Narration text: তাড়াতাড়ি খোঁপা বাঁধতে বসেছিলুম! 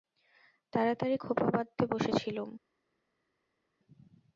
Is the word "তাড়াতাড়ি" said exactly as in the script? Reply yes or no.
yes